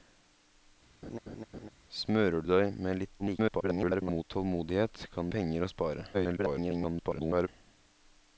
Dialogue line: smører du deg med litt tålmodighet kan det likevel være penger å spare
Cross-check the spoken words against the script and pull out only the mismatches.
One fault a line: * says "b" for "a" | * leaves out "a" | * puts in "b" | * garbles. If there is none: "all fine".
* garbles
* leaves out "det likevel være"
* garbles